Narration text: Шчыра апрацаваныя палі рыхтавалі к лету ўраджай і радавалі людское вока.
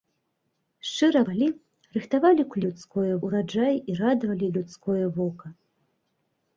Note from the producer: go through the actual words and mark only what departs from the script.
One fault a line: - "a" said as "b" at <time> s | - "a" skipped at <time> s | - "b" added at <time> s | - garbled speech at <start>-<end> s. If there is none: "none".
- "апрацаваныя" skipped at 1.2 s
- "лету" said as "людское" at 2.7 s